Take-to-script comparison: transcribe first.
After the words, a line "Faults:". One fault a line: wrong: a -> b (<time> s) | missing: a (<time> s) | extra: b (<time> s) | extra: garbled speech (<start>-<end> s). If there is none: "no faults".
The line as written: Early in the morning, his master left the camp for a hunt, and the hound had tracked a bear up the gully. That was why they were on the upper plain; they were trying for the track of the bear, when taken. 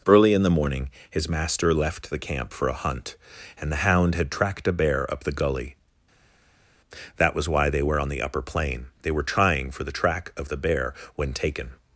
Early in the morning, his master left the camp for a hunt, and the hound had tracked a bear up the gully. That was why they were on the upper plain; they were trying for the track of the bear, when taken.
Faults:
no faults